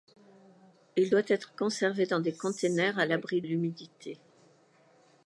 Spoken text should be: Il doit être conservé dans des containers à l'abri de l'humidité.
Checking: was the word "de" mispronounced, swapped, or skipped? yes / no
yes